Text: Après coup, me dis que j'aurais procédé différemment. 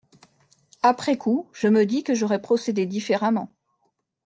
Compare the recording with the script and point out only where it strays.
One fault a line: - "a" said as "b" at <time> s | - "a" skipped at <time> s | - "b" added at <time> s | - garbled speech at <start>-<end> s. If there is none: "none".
- "je" added at 1.5 s